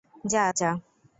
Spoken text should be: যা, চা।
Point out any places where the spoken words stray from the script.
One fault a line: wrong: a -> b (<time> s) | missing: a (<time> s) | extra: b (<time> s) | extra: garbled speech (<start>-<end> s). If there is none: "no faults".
no faults